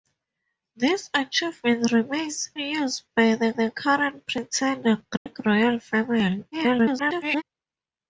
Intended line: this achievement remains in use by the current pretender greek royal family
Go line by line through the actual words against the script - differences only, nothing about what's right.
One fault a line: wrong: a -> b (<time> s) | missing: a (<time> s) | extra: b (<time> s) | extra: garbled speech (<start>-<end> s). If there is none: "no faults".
missing: in (2.5 s)
extra: the (3.5 s)
extra: garbled speech (6.5-7.4 s)